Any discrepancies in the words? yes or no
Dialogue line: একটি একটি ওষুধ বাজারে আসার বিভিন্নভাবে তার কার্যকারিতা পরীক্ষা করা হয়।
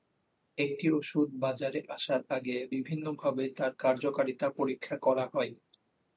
yes